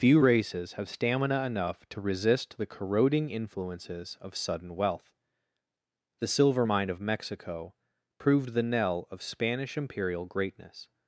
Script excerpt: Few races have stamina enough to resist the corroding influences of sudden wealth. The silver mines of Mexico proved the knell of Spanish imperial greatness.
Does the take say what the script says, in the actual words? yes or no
no